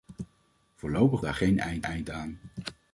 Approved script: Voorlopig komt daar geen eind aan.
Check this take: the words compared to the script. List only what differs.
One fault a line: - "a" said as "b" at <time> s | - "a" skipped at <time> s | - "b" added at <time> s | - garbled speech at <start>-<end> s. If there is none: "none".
- "komt" skipped at 1.2 s
- "eind" added at 1.8 s